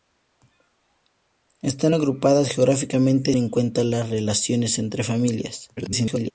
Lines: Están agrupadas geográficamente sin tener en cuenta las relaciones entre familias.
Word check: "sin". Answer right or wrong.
wrong